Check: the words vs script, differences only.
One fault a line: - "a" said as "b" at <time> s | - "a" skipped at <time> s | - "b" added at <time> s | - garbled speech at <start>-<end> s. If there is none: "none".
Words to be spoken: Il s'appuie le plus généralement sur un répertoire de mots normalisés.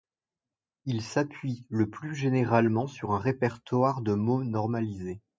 none